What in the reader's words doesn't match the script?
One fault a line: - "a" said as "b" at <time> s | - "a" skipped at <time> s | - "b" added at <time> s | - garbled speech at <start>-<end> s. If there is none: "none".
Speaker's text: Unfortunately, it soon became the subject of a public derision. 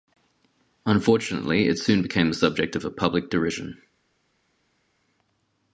none